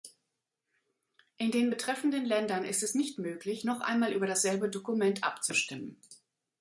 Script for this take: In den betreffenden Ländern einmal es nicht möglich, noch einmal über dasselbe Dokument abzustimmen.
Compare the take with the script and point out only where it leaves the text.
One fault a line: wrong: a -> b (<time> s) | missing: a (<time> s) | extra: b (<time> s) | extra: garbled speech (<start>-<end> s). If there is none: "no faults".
wrong: einmal -> ist (2.6 s)